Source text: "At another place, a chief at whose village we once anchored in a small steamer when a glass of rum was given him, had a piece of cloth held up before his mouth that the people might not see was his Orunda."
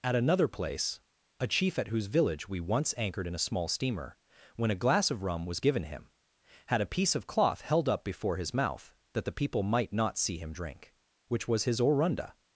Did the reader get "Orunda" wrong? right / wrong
right